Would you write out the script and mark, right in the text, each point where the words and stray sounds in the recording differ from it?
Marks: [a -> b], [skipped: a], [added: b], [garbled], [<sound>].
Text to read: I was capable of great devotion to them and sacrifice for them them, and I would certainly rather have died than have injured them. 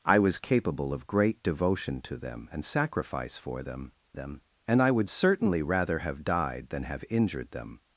I was capable of great devotion to them and sacrifice for them them, and I would certainly rather have died than have injured them.